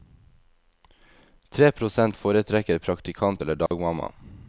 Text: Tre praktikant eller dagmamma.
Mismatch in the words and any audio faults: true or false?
true